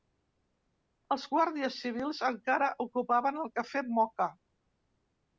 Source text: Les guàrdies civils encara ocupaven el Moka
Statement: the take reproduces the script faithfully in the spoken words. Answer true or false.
false